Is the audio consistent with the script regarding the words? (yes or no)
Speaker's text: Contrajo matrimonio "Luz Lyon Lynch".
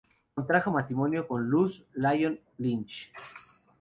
no